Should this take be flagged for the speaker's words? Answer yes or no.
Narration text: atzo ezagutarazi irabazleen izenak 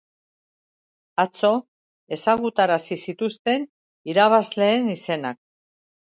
yes